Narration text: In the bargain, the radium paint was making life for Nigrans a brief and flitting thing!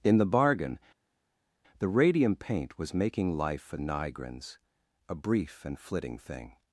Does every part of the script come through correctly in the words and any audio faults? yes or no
yes